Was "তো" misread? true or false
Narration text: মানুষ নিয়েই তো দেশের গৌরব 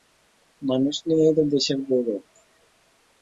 false